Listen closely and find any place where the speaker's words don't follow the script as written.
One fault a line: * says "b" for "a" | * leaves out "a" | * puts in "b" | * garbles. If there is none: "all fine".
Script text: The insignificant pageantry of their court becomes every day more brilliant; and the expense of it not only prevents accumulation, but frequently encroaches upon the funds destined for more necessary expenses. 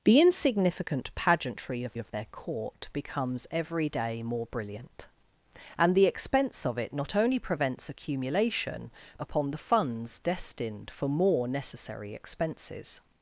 * puts in "of"
* leaves out "but frequently encroaches"